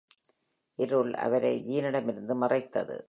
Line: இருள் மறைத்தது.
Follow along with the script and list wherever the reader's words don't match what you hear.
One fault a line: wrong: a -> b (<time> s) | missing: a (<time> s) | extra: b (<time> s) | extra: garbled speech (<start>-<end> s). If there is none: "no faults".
extra: அவரை ஜீனிடமிருந்து (1.1 s)